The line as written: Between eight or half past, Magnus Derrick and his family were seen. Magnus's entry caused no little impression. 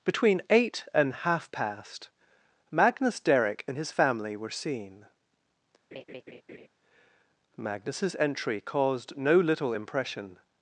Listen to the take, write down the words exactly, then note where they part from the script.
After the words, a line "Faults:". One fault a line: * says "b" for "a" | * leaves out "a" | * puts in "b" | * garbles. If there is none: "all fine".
Between eight and half past, Magnus Derrick and his family were seen. Magnus's entry caused no little impression.
Faults:
* says "and" for "or"